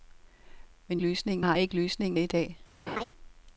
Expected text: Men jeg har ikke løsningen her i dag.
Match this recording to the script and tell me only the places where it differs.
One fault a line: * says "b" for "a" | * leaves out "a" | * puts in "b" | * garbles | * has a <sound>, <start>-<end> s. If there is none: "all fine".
* says "løsningen" for "jeg"
* leaves out "her"
* has a laugh, 2.9-3.0 s